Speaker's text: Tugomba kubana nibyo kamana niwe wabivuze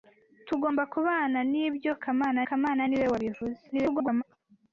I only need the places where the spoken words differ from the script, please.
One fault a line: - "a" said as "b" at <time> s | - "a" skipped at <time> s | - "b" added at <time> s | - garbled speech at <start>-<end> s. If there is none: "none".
- "kamana" added at 2.5 s
- garbled speech at 3.7-4.2 s